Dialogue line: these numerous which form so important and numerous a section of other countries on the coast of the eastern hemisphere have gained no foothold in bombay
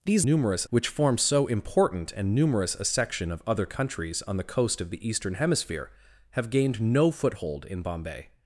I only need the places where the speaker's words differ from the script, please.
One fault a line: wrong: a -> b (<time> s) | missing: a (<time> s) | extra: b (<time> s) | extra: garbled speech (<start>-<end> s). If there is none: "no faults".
no faults